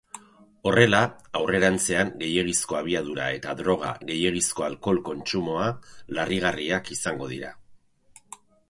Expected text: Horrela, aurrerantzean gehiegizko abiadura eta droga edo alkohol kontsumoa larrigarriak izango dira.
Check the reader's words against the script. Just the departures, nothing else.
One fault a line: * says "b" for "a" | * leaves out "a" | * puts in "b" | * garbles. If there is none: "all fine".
* says "gehiegizko" for "edo"